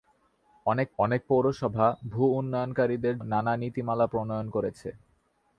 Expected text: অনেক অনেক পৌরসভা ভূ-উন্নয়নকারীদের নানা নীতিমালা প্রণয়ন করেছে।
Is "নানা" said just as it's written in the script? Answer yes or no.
yes